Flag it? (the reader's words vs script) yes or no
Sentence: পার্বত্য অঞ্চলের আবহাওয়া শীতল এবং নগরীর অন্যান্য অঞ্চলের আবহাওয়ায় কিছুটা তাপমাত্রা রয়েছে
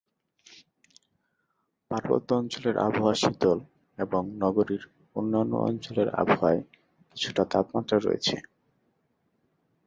no